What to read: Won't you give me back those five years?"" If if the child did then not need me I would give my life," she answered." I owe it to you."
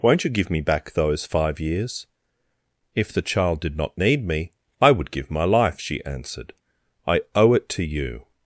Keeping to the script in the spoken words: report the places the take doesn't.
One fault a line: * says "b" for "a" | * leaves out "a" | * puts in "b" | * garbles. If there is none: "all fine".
* leaves out "if"
* leaves out "then"